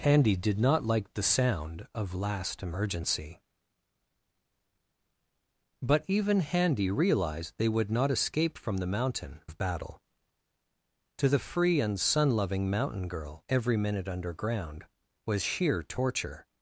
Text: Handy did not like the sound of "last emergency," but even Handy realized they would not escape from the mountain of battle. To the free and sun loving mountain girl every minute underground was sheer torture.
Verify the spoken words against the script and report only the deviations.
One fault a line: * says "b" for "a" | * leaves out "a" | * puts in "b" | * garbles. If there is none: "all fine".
all fine